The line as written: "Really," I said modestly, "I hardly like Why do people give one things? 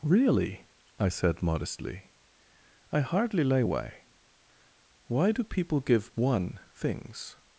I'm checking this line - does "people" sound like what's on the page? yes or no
yes